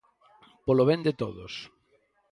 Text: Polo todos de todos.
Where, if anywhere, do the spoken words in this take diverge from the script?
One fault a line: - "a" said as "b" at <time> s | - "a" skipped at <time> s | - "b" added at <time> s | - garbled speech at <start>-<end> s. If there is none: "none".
- "todos" said as "ben" at 0.9 s